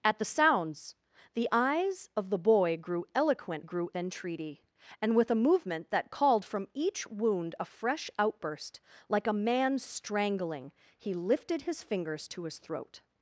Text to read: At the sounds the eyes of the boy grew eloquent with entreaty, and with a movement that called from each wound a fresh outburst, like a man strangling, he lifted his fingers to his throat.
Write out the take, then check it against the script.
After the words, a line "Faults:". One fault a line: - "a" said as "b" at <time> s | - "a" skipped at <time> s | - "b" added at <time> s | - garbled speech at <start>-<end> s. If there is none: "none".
At the sounds the eyes of the boy grew eloquent grew entreaty, and with a movement that called from each wound a fresh outburst, like a man strangling, he lifted his fingers to his throat.
Faults:
- "with" said as "grew" at 3.6 s